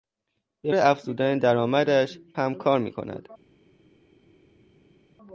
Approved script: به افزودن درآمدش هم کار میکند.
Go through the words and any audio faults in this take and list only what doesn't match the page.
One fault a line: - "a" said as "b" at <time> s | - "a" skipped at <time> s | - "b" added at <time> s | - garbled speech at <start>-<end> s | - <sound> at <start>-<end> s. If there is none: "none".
none